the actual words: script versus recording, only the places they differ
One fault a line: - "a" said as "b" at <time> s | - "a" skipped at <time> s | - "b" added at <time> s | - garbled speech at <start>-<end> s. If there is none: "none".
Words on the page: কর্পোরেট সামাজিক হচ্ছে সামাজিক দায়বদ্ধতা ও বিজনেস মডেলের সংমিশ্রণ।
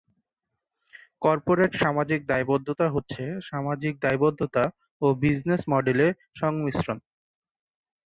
- "দায়বদ্ধতা" added at 2.3 s